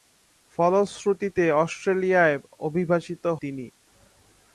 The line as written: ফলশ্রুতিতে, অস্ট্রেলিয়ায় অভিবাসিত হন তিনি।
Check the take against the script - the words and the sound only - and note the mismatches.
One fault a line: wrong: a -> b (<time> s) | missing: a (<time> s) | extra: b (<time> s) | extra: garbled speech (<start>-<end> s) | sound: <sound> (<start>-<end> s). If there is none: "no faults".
missing: হন (3.2 s)